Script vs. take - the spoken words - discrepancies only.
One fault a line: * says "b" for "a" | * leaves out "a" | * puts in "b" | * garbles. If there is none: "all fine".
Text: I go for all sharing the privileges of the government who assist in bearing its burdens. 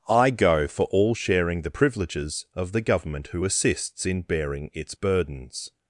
* says "assists" for "assist"